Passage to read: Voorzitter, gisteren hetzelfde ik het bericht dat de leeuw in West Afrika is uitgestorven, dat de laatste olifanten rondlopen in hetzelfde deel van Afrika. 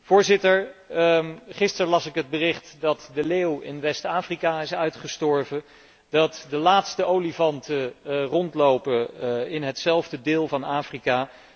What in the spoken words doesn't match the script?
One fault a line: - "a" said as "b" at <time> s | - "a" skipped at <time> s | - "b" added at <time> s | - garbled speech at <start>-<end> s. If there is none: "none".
- "hetzelfde" said as "las" at 1.9 s